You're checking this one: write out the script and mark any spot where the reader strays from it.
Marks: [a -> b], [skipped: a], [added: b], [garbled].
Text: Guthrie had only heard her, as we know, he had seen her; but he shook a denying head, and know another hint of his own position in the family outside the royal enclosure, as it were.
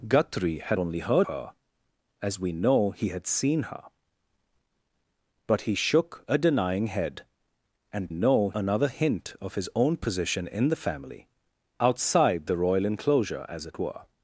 Guthrie had only heard her, as we know, he had seen her; but he shook a denying head, and know another hint of his own position in the family outside the royal enclosure, as it were.